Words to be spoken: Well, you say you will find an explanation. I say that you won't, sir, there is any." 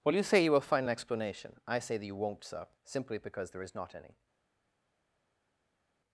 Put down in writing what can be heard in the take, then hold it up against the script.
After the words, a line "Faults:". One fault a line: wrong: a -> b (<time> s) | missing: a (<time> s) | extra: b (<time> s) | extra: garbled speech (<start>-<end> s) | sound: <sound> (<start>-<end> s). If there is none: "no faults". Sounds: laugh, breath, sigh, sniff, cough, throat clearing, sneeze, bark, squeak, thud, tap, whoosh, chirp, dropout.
Well, you say you will find an explanation. I say that you won't, sir, simply because there is not any."
Faults:
extra: simply because (2.8 s)
extra: not (3.7 s)